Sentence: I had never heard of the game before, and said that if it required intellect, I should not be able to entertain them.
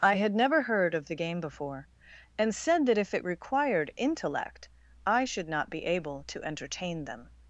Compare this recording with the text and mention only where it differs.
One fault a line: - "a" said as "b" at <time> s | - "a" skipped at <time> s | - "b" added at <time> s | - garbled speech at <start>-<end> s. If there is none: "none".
none